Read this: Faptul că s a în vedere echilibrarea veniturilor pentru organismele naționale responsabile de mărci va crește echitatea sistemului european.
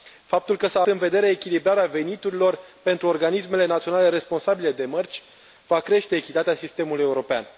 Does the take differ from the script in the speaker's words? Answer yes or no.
no